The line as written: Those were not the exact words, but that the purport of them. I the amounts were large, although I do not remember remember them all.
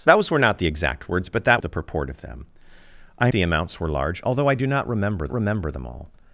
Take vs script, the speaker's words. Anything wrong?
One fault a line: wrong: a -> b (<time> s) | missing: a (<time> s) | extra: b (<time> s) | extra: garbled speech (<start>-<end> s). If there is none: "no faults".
no faults